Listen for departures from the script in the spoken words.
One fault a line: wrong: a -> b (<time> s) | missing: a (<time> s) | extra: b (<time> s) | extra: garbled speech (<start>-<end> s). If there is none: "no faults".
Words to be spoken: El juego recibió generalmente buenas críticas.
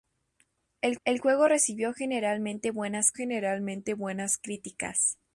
extra: el (1.0 s)
extra: generalmente buenas (3.1 s)